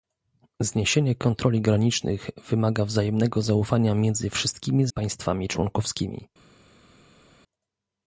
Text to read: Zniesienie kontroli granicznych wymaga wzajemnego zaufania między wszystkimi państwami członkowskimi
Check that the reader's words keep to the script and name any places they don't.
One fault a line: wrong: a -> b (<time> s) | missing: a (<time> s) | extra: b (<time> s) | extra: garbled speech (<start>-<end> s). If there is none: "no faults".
no faults